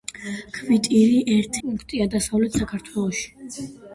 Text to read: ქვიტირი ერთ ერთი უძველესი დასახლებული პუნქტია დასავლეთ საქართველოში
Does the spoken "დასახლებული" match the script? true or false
false